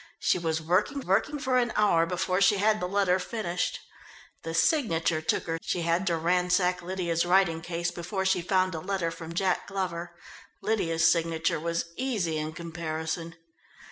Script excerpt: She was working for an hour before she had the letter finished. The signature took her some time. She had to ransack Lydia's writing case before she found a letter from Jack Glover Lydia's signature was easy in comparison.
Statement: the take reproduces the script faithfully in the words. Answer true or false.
false